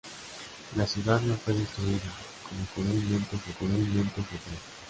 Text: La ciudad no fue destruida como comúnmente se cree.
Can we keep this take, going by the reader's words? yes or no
no